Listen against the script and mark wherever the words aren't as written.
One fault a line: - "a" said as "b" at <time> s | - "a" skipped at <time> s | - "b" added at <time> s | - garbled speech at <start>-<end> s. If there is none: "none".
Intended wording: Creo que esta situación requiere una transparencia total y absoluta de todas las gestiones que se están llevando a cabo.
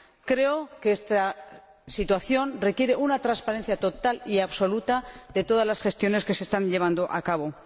none